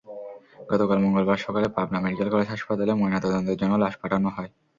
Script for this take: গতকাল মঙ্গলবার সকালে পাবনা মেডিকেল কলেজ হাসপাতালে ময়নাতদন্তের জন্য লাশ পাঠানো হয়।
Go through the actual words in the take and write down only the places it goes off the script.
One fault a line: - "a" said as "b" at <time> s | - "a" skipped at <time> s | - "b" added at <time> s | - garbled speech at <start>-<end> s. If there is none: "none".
none